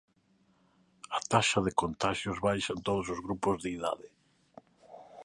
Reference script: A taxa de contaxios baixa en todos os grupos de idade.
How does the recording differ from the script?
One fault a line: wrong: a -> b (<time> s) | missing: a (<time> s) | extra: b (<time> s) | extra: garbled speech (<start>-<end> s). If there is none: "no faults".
no faults